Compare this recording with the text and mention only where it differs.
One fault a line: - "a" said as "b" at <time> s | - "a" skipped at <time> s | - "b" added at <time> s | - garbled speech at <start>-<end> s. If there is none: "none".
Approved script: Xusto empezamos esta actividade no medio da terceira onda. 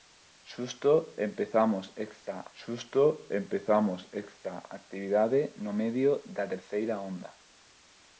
- "xusto empezamos esta" added at 2.6 s